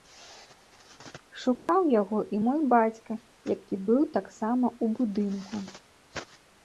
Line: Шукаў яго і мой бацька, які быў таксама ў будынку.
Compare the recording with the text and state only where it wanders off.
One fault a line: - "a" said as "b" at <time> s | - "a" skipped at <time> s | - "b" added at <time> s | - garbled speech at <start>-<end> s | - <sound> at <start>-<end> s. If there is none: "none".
- dropout at 1.6-1.7 s